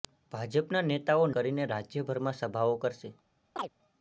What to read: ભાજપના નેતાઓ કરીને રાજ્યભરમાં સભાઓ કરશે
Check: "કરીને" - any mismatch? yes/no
no